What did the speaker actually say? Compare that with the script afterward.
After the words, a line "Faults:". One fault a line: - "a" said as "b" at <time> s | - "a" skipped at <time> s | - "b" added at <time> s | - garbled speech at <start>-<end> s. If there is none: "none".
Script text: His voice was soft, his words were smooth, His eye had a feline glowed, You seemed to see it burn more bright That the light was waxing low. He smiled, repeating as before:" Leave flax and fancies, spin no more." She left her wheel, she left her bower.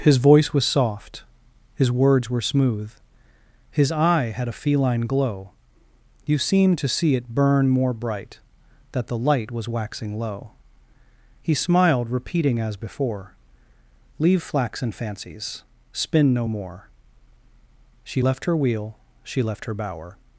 His voice was soft, his words were smooth, His eye had a feline glow, You seemed to see it burn more bright That the light was waxing low. He smiled, repeating as before:" Leave flax and fancies, spin no more." She left her wheel, she left her bower.
Faults:
- "glowed" said as "glow" at 5.0 s